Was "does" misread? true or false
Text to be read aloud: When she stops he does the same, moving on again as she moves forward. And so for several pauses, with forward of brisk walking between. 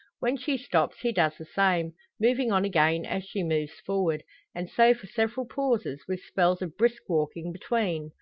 false